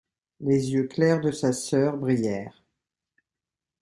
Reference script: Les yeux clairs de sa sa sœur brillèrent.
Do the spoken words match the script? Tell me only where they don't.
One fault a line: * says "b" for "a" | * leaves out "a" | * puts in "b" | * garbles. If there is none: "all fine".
* leaves out "sa"